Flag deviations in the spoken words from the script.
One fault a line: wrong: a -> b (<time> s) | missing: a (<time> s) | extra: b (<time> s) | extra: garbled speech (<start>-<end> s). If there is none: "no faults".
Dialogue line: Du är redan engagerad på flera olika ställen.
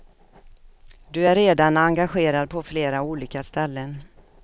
no faults